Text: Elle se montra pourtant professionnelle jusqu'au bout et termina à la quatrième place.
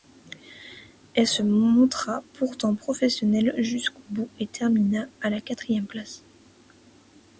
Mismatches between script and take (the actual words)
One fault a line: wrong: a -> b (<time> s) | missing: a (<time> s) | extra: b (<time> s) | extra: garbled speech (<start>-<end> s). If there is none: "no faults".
no faults